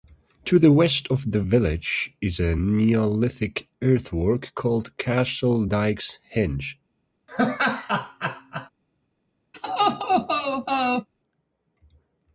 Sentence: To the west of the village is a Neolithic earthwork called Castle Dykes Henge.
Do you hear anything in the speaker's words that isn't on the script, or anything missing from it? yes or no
no